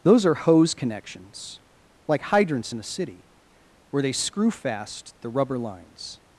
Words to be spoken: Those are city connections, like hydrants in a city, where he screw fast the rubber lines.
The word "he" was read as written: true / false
false